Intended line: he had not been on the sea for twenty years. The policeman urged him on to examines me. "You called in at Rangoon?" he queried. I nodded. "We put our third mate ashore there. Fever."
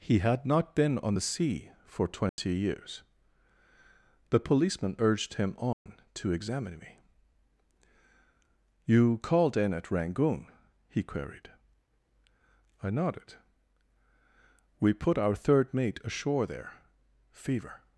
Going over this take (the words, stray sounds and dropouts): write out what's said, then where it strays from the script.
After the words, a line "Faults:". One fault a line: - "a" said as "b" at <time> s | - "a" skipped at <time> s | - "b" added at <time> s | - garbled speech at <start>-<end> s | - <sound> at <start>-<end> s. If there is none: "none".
he had not been on the sea for twenty years. The policeman urged him on to examine me. "You called in at Rangoon?" he queried. I nodded. "We put our third mate ashore there. Fever."
Faults:
- dropout at 2.3-2.4 s
- dropout at 5.7-5.9 s
- "examines" said as "examine" at 6.3 s